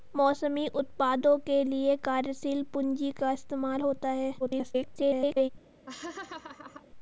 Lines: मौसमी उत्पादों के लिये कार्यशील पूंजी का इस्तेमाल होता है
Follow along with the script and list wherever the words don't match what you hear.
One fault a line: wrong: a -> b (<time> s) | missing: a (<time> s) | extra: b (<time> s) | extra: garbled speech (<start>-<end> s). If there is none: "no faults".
extra: garbled speech (4.4-5.5 s)